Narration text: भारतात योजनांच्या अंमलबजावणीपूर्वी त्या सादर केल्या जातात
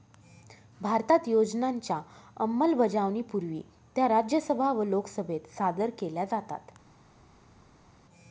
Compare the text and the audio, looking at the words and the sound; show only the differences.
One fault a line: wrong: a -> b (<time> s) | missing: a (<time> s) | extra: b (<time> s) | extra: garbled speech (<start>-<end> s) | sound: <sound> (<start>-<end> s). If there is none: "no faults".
extra: राज्यसभा व लोकसभेत (4.1 s)